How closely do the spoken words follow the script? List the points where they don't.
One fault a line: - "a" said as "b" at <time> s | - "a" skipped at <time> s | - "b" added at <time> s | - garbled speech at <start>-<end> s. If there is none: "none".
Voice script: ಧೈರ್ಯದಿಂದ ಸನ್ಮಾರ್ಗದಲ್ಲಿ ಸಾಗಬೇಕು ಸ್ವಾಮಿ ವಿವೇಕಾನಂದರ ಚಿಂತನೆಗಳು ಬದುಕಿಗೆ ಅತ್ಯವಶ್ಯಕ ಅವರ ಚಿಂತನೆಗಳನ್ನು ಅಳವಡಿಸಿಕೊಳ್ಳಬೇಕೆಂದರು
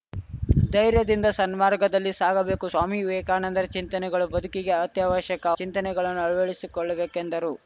- "ಅವರ" skipped at 5.5 s